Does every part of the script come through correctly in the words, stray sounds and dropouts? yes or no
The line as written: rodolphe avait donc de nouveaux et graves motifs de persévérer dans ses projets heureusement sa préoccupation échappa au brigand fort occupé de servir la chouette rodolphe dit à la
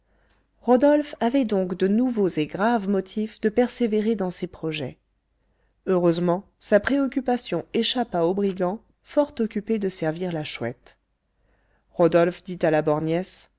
yes